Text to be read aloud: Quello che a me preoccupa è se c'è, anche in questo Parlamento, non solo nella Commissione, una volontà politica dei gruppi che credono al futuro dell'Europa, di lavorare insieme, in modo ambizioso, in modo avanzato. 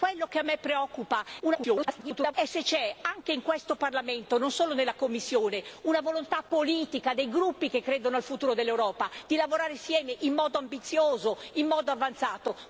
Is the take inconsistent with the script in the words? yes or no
yes